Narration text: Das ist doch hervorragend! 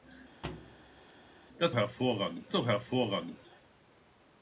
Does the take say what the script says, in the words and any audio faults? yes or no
no